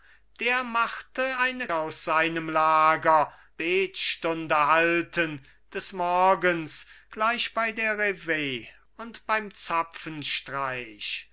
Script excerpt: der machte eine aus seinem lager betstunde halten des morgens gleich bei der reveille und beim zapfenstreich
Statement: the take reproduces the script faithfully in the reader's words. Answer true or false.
true